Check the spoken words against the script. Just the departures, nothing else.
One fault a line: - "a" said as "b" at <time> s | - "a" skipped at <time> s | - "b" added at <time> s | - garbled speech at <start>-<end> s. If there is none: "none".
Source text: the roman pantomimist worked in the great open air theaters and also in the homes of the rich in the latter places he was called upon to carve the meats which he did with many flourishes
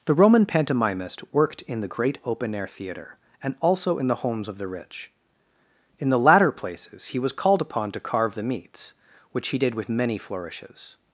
- "theaters" said as "theater" at 2.7 s